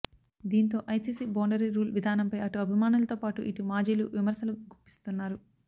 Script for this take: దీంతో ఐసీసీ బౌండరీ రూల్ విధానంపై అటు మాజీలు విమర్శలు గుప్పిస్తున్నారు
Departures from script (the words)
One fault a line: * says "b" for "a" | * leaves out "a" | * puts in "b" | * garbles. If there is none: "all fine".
* puts in "అభిమానులతో పాటు ఇటు"